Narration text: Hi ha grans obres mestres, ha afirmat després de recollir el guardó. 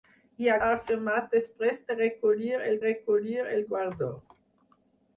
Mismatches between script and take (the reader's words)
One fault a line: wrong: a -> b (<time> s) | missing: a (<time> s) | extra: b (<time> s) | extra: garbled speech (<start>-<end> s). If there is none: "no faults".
missing: grans obres mestres (0.5 s)
extra: recollir el (2.9 s)